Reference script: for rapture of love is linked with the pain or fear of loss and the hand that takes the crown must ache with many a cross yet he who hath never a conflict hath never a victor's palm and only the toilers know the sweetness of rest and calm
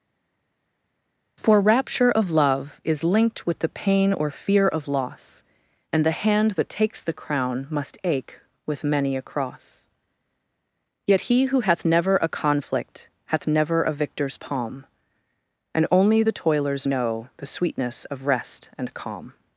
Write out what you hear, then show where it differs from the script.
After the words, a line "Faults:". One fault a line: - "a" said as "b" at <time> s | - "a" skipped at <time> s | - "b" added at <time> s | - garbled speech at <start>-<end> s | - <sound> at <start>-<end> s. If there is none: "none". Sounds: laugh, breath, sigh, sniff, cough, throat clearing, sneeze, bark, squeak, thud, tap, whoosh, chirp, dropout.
for rapture of love is linked with the pain or fear of loss and the hand that takes the crown must ache with many a cross yet he who hath never a conflict hath never a victor's palm and only the toilers know the sweetness of rest and calm
Faults:
none